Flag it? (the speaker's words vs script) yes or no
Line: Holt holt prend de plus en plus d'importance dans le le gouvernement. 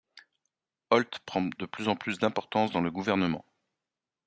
yes